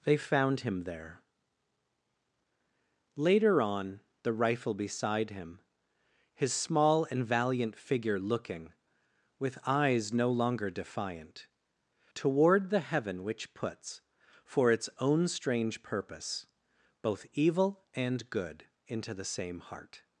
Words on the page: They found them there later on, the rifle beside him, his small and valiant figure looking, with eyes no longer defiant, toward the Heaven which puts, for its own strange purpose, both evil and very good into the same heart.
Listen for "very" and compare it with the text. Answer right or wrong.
wrong